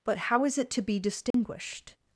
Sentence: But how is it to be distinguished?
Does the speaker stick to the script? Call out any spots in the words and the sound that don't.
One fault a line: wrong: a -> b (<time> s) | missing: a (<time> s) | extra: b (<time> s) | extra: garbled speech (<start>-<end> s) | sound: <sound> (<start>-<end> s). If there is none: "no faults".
sound: dropout (1.3-1.3 s)